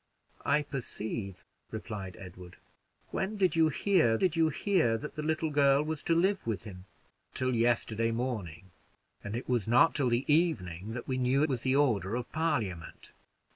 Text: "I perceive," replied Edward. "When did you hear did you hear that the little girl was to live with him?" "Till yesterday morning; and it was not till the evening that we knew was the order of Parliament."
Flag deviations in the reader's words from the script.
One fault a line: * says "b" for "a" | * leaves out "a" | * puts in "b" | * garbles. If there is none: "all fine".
all fine